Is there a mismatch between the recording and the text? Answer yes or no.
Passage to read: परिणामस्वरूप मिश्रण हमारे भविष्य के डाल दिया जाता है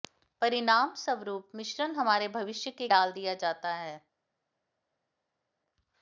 no